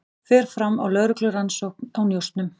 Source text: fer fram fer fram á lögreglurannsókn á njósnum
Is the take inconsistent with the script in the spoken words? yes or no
yes